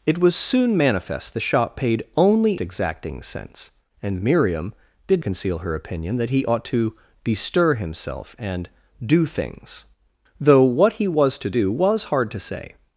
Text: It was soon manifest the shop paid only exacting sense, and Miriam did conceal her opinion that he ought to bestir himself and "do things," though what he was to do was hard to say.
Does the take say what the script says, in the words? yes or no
yes